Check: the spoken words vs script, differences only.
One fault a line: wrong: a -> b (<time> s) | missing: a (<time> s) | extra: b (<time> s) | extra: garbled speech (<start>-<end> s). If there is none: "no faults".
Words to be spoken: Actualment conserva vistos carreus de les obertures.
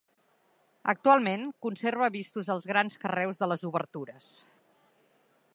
extra: els grans (2.5 s)